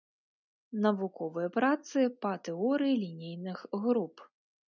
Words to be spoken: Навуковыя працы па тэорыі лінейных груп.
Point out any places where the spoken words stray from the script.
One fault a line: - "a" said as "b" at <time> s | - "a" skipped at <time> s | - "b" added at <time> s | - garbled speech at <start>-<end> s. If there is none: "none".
none